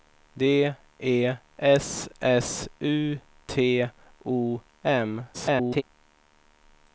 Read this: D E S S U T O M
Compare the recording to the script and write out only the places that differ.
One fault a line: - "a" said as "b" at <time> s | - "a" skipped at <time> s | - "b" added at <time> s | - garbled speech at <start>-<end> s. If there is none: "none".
- garbled speech at 5.3-5.8 s